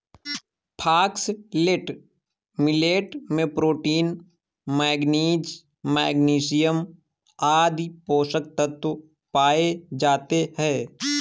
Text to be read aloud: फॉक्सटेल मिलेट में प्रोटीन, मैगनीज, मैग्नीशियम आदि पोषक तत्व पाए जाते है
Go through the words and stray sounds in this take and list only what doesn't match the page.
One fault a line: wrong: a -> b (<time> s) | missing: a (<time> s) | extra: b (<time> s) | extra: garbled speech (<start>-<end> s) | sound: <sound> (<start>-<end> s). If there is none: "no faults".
no faults